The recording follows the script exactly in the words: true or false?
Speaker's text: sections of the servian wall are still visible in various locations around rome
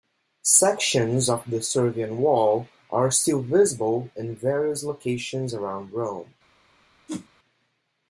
true